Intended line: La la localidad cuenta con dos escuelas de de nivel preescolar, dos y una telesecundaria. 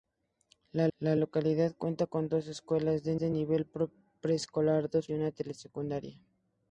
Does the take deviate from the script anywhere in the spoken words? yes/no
no